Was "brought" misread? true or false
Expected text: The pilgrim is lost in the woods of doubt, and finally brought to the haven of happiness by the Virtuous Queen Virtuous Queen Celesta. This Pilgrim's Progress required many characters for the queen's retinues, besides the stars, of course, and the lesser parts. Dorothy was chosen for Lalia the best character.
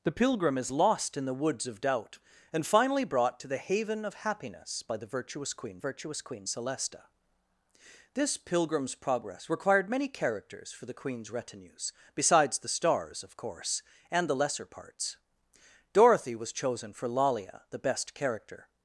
false